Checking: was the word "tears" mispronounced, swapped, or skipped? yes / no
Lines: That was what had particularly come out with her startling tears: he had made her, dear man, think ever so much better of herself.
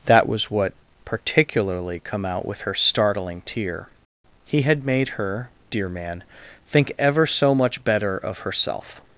yes